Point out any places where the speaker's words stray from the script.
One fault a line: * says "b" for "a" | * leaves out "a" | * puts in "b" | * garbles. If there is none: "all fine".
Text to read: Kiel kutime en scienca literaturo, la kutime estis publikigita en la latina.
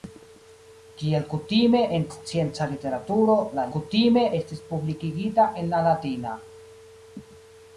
all fine